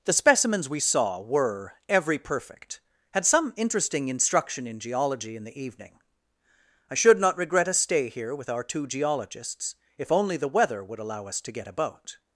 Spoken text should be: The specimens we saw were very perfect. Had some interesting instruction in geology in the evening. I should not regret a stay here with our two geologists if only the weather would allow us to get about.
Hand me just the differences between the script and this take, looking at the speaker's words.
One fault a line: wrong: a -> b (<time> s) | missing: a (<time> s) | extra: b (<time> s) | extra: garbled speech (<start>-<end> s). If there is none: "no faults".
wrong: very -> every (1.9 s)